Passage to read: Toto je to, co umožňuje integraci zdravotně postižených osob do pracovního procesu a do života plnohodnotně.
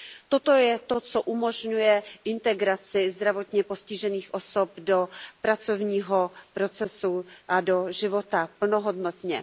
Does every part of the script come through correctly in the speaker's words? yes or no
yes